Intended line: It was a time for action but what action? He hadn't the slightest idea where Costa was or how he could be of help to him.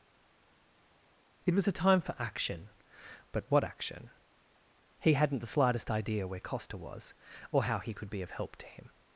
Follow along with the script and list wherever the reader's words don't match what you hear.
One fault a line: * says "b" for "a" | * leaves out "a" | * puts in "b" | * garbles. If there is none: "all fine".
all fine